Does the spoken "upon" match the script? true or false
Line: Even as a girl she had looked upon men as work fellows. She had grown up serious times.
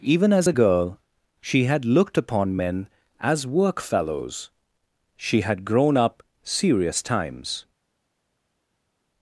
true